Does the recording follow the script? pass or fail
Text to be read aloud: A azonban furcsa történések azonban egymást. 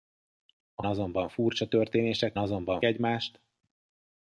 pass